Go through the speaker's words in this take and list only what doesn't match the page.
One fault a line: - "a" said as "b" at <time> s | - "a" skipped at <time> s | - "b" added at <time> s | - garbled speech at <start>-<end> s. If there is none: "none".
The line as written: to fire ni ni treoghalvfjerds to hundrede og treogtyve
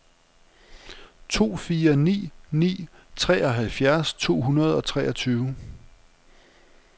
none